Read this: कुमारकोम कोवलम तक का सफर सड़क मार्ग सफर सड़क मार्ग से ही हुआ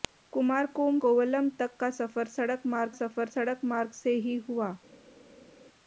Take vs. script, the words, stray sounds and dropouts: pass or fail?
pass